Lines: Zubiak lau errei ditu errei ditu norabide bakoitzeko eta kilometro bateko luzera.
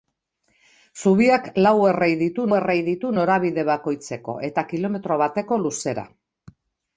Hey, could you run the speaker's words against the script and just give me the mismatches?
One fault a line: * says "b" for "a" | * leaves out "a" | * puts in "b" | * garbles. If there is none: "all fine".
all fine